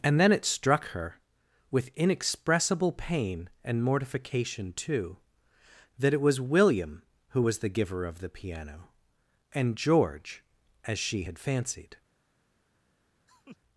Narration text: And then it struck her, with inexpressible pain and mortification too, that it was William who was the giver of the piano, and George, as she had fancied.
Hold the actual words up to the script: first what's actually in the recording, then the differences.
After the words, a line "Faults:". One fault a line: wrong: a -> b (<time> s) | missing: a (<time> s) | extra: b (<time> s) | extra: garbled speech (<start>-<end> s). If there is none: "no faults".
And then it struck her, with inexpressible pain and mortification too, that it was William who was the giver of the piano, and George, as she had fancied.
Faults:
no faults